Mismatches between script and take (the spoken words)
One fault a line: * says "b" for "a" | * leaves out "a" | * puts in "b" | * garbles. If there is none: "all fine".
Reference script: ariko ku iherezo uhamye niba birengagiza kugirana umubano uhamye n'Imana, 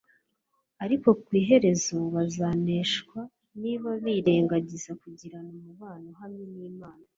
* says "bazaneshwa" for "uhamye"